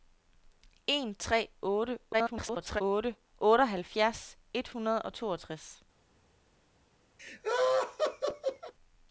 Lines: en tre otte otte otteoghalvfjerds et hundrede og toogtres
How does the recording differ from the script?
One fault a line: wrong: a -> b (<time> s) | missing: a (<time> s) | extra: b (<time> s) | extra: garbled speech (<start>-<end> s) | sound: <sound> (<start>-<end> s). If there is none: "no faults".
extra: garbled speech (2.1-2.8 s)
sound: laugh (7.2-8.7 s)